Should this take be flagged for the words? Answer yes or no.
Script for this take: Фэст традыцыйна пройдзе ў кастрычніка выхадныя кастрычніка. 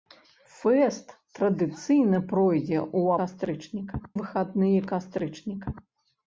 no